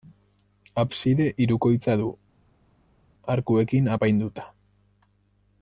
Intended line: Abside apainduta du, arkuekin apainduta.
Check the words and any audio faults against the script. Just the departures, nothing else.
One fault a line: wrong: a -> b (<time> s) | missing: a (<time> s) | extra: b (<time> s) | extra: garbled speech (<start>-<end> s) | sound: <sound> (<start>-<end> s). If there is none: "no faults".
wrong: apainduta -> hirukoitza (1.4 s)